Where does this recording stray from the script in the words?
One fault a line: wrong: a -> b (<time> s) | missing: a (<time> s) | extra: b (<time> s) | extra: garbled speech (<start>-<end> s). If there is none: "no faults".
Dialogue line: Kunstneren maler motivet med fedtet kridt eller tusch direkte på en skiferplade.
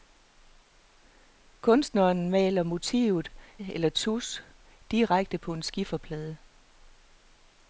missing: med fedtet kridt (3.3 s)